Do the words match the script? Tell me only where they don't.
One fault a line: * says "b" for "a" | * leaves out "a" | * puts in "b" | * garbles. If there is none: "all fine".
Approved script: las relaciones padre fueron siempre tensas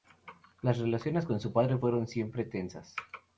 * puts in "con su"